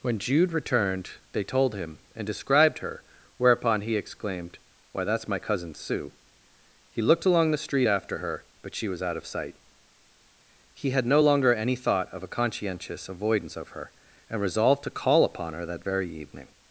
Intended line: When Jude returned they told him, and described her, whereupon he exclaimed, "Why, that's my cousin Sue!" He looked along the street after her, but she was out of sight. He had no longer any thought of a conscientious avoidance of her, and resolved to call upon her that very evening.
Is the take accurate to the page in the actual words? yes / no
yes